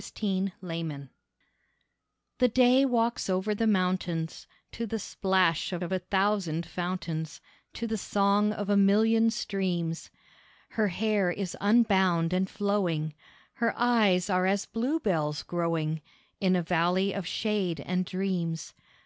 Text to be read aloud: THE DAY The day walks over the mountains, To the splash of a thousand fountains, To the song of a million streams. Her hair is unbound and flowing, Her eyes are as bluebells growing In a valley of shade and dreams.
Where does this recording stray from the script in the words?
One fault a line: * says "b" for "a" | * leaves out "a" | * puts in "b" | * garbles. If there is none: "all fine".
* puts in "of"